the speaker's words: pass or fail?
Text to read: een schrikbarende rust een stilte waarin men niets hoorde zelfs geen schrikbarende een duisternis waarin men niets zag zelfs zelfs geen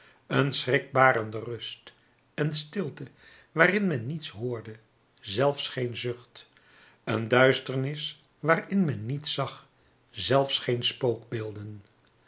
fail